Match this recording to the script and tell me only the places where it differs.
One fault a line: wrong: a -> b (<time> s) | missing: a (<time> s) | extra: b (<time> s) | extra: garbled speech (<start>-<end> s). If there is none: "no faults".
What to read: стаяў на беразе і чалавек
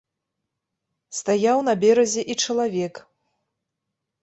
no faults